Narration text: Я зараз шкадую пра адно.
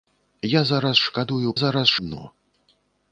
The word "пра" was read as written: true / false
false